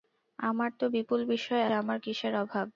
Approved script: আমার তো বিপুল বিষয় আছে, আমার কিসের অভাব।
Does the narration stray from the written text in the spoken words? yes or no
yes